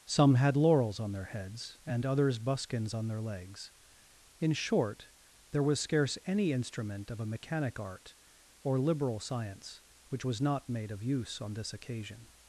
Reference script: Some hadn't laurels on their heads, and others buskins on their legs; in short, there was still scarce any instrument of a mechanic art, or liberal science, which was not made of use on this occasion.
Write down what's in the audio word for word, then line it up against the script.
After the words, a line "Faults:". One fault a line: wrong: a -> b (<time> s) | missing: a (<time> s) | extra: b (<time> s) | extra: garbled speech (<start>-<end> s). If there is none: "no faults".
Some had laurels on their heads, and others buskins on their legs; in short, there was scarce any instrument of a mechanic art, or liberal science, which was not made of use on this occasion.
Faults:
wrong: hadn't -> had (0.3 s)
missing: still (5.8 s)